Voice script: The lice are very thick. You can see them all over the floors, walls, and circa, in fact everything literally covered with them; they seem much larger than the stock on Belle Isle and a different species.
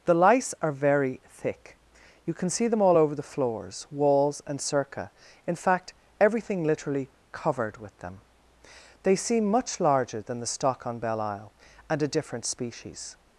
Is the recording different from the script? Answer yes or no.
no